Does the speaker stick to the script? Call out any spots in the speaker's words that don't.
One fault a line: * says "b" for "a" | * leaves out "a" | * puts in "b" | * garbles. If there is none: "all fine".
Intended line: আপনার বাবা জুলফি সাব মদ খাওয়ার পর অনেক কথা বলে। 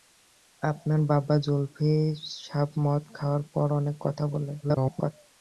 * garbles